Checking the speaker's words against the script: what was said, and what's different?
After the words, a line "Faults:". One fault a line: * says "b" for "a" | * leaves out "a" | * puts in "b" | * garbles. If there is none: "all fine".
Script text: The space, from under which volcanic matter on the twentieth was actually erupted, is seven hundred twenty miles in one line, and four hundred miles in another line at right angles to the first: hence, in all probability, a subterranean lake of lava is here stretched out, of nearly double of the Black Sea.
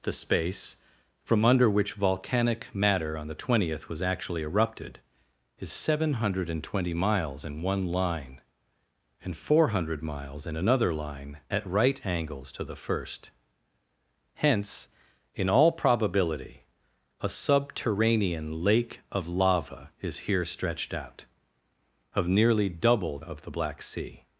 The space, from under which volcanic matter on the twentieth was actually erupted, is seven hundred twenty miles in one line, and four hundred miles in another line at right angles to the first: hence, in all probability, a subterranean lake of lava is here stretched out, of nearly double of the Black Sea.
Faults:
all fine